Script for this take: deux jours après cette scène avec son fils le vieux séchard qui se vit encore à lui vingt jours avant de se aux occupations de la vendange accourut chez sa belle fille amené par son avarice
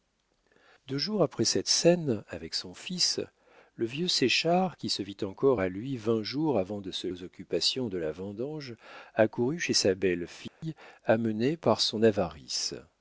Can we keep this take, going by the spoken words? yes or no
yes